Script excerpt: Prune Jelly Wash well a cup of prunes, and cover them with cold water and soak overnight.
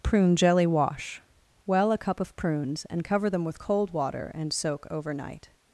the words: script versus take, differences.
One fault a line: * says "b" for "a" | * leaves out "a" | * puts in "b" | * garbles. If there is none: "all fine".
all fine